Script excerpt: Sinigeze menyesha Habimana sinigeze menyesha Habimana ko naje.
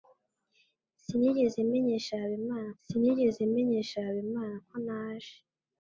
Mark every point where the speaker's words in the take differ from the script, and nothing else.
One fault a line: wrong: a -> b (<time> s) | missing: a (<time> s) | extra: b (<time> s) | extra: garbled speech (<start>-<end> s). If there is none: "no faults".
no faults